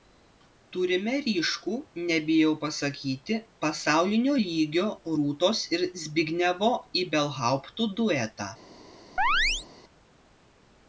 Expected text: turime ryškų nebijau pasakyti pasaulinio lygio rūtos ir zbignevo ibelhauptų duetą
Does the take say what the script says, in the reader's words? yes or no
yes